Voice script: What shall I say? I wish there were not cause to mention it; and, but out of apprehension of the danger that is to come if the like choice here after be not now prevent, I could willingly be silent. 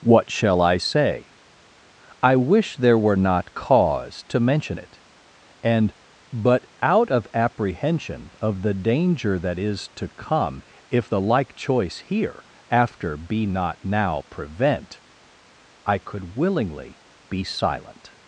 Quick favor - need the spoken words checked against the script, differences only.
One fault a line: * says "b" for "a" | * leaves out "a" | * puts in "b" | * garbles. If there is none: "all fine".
all fine